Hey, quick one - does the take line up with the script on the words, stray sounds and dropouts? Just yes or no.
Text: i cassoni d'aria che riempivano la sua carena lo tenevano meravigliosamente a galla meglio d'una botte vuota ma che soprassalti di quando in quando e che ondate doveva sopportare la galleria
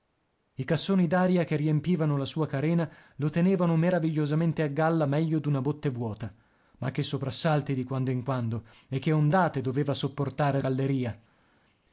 no